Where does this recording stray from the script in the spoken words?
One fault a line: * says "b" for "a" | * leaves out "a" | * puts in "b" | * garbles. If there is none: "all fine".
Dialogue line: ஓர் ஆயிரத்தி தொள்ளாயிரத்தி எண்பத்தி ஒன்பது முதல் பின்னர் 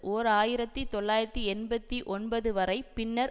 * says "வரை" for "முதல்"